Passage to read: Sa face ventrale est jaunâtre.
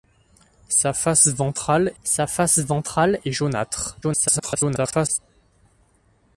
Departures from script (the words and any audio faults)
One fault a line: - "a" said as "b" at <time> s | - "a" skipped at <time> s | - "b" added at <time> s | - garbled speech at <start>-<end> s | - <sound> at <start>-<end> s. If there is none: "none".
- "sa face ventrale" added at 2.0 s
- garbled speech at 4.0-5.2 s